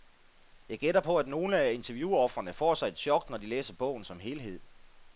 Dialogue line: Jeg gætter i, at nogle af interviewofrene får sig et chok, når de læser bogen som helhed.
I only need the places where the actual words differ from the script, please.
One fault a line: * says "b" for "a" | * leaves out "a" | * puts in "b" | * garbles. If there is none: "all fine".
* says "på" for "i"